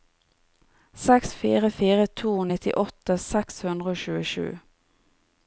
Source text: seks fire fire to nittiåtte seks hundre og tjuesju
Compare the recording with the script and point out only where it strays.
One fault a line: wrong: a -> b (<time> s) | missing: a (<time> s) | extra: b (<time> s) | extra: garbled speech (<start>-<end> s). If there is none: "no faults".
no faults